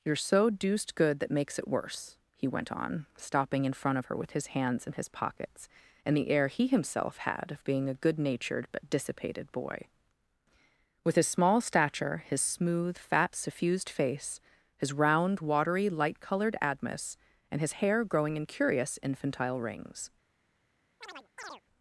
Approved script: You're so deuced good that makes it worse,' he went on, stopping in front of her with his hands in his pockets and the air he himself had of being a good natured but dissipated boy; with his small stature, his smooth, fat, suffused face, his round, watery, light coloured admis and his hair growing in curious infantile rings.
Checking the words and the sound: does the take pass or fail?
fail